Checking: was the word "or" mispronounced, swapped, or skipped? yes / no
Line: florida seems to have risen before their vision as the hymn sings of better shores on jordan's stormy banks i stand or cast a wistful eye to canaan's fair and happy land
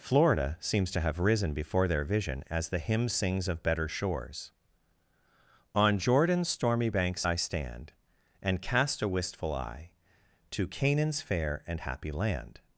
yes